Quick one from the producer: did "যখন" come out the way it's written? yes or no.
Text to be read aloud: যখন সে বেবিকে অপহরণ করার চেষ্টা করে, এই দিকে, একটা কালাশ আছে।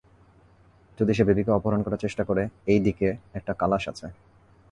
no